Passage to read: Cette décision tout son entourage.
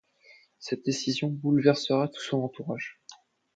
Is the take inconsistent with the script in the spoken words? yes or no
yes